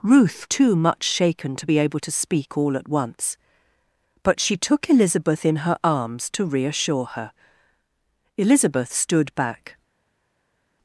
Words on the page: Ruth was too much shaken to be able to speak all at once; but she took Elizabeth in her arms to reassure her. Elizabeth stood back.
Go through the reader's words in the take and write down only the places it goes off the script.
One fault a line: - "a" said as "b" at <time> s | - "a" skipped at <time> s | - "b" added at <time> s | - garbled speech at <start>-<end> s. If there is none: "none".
- "was" skipped at 0.5 s